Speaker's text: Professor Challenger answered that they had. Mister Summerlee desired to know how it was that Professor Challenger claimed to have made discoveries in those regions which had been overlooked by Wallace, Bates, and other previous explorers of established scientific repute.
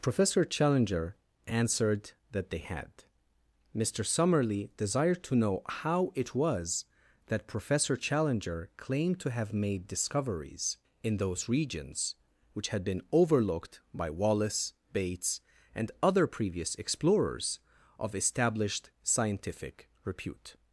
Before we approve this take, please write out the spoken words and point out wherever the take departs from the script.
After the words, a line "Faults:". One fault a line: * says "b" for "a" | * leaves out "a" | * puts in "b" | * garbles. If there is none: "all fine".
Professor Challenger answered that they had. Mister Summerlee desired to know how it was that Professor Challenger claimed to have made discoveries in those regions which had been overlooked by Wallace, Bates, and other previous explorers of established scientific repute.
Faults:
all fine